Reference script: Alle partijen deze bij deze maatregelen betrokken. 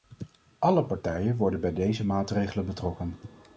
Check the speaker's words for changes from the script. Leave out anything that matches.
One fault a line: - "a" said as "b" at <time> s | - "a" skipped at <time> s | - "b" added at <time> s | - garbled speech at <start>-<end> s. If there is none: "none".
- "deze" said as "worden" at 1.4 s